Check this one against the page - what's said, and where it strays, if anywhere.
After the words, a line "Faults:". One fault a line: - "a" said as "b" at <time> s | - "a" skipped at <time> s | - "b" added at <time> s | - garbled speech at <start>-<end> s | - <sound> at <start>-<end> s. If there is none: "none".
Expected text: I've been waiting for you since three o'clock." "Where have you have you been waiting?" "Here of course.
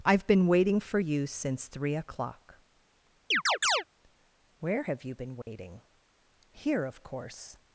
I've been waiting for you since three o'clock." "Where have you been waiting?" "Here of course.
Faults:
- chirp at 3.3-3.8 s
- "have you" skipped at 5.1 s
- dropout at 5.4-5.5 s